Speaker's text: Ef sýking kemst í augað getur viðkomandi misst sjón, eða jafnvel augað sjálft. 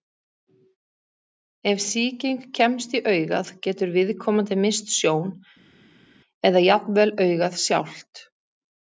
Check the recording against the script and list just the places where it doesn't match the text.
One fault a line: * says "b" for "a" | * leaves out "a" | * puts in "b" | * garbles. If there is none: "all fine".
all fine